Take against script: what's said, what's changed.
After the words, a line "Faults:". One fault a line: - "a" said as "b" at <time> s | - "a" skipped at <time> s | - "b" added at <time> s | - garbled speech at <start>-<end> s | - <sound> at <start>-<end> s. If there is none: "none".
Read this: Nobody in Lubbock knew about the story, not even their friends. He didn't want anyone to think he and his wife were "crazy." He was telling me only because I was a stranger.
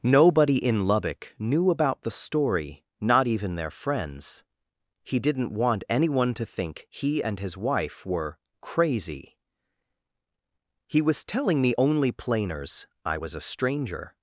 Nobody in Lubbock knew about the story, not even their friends. He didn't want anyone to think he and his wife were "crazy." He was telling me only planers I was a stranger.
Faults:
- "because" said as "planers" at 12.1 s